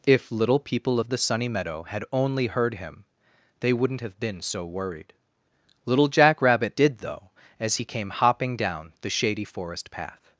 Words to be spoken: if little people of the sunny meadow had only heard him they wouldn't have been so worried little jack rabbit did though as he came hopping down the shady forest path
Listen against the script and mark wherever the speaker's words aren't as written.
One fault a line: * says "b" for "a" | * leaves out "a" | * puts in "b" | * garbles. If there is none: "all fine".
all fine